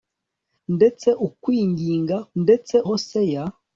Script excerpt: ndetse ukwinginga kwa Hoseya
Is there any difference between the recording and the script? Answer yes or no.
yes